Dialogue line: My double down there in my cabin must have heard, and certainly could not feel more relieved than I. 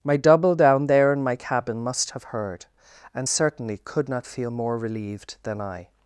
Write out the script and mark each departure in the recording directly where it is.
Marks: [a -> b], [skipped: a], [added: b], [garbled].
My double down there in my cabin must have heard, and certainly could not feel more relieved than I.